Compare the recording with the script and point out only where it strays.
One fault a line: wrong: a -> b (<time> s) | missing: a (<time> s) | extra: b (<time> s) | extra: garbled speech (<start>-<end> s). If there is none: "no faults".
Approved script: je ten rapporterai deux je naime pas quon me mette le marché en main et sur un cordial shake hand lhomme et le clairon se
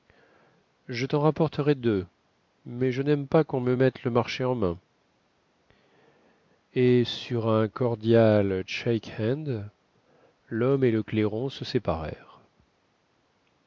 extra: mais (2.6 s)